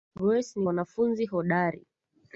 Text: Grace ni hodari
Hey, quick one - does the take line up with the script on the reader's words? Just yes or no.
no